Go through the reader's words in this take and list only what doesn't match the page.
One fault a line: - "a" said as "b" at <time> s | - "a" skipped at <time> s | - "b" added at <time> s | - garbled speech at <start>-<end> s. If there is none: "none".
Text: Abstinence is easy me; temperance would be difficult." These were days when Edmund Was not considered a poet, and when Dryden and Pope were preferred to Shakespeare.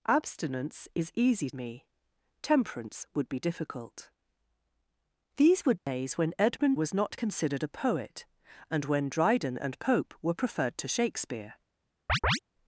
none